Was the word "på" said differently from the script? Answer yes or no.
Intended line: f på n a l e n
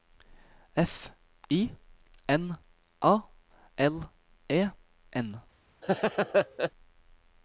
yes